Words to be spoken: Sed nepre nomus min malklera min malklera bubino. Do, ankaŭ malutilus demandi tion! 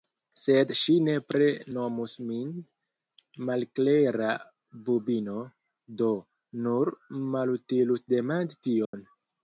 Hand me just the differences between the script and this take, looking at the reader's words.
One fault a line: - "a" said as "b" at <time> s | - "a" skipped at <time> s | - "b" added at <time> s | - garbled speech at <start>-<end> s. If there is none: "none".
- "ŝi" added at 0.8 s
- "min malklera" skipped at 4.3 s
- "ankaŭ" said as "nur" at 6.6 s